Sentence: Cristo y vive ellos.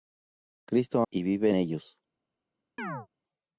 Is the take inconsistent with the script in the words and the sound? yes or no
yes